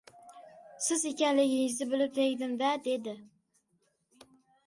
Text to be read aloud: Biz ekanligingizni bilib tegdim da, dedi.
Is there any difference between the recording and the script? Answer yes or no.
yes